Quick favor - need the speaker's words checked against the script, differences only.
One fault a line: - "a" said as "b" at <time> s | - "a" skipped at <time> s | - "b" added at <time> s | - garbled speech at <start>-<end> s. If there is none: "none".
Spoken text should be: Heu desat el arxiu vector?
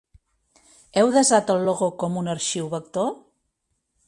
- "logo com un" added at 1.7 s